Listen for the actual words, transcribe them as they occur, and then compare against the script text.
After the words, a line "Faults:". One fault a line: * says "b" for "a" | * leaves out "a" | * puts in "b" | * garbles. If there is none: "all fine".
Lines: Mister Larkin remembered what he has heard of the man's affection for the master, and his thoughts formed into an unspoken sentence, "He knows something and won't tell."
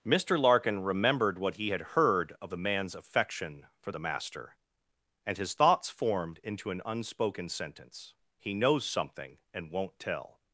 Mister Larkin remembered what he had heard of the man's affection for the master, and his thoughts formed into an unspoken sentence, "He knows something and won't tell."
Faults:
* says "had" for "has"